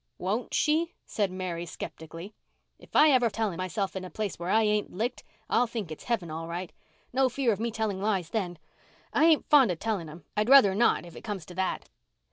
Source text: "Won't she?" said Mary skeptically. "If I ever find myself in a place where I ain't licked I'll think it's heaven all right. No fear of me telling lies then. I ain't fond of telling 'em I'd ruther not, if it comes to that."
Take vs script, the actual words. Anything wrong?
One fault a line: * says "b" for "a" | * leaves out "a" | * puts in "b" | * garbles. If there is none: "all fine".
* says "telling" for "find"